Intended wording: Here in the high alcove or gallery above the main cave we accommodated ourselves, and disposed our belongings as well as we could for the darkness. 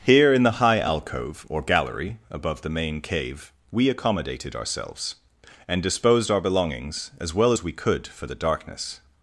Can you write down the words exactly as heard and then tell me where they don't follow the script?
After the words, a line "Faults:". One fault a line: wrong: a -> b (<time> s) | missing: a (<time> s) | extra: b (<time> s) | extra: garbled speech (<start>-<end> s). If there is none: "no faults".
Here in the high alcove or gallery above the main cave we accommodated ourselves, and disposed our belongings as well as we could for the darkness.
Faults:
no faults